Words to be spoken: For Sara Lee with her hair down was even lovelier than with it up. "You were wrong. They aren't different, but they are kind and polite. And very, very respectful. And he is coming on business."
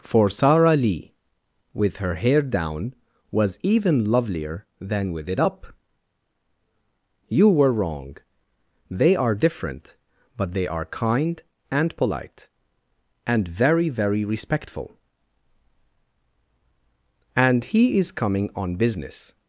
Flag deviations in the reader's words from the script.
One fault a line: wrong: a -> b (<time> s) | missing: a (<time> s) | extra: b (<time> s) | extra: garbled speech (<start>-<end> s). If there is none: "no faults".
wrong: aren't -> are (9.2 s)